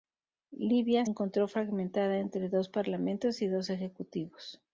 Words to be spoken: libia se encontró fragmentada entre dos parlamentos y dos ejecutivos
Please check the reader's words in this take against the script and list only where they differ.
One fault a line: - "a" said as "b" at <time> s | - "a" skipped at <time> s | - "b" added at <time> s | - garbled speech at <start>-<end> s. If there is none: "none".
- "se" skipped at 1.1 s